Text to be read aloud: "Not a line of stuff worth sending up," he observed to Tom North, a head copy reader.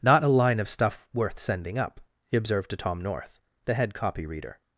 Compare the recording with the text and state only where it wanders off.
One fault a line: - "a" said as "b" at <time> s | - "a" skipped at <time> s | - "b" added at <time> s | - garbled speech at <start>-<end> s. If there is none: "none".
- "a" said as "the" at 3.6 s